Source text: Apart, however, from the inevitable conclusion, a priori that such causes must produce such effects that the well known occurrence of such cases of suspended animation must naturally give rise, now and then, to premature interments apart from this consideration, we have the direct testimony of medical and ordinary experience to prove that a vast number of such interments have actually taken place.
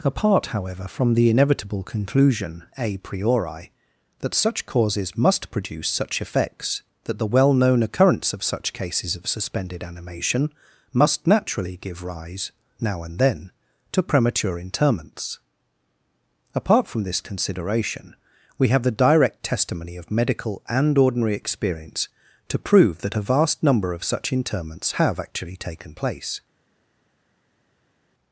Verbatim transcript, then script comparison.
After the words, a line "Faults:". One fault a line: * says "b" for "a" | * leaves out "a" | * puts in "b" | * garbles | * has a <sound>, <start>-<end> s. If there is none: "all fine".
Apart, however, from the inevitable conclusion, a priori that such causes must produce such effects that the well known occurrence of such cases of suspended animation must naturally give rise, now and then, to premature interments apart from this consideration, we have the direct testimony of medical and ordinary experience to prove that a vast number of such interments have actually taken place.
Faults:
all fine